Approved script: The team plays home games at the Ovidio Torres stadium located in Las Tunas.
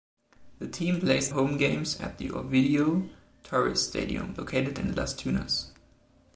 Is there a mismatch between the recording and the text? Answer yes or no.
no